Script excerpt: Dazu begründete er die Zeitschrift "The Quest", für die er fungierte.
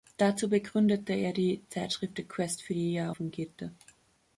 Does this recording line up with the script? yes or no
yes